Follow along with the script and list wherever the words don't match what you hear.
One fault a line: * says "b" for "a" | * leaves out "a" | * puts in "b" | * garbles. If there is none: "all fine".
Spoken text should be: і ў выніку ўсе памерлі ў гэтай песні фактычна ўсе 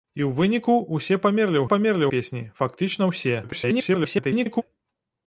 * says "памерлі" for "гэтай"
* garbles